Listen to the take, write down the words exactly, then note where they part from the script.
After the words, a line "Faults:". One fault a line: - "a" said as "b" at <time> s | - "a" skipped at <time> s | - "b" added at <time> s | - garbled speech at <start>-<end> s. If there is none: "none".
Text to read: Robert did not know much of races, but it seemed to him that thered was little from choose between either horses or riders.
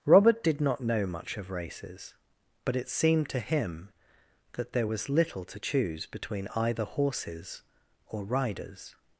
Robert did not know much of races, but it seemed to him that there was little to choose between either horses or riders.
Faults:
- "thered" said as "there" at 4.7 s
- "from" said as "to" at 5.5 s